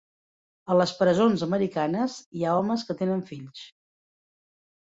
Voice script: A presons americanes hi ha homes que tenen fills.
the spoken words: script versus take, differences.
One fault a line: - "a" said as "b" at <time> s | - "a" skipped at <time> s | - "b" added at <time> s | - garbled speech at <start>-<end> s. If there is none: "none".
- "les" added at 0.8 s